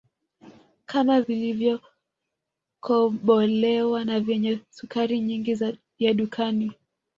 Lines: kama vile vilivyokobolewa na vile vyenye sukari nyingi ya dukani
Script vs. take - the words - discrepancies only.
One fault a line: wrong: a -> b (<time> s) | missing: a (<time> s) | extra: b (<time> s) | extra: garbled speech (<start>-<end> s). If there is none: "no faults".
missing: vile (1.2 s)
missing: vile (4.2 s)